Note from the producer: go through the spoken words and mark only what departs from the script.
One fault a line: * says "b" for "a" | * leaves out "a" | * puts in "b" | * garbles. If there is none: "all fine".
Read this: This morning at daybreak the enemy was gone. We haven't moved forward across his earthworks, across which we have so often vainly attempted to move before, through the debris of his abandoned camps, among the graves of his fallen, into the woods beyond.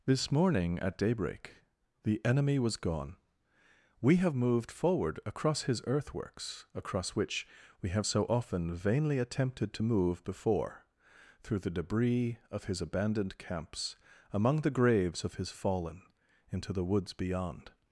* says "have" for "haven't"